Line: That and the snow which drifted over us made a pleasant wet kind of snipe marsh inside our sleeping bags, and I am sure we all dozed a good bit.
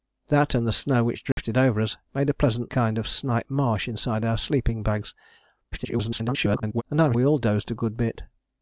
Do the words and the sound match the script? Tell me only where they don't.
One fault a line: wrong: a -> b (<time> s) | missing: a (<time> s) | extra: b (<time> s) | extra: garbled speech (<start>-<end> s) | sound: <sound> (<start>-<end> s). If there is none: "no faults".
sound: dropout (1.3-1.4 s)
missing: wet (2.7 s)
extra: garbled speech (5.7-6.8 s)
missing: sure (7.1 s)